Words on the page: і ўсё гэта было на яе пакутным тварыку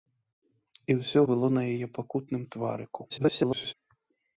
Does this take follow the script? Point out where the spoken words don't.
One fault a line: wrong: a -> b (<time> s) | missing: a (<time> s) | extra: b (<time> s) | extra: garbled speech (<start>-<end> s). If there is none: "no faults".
missing: гэта (1.2 s)
extra: garbled speech (3.1-3.7 s)